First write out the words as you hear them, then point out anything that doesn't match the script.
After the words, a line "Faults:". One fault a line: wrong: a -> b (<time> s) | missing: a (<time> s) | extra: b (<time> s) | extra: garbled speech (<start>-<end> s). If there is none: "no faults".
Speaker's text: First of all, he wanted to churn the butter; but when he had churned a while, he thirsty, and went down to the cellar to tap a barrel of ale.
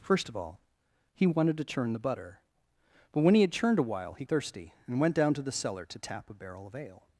First of all, he wanted to churn the butter; but when he had churned a while, he thirsty, and went down to the cellar to tap a barrel of ale.
Faults:
no faults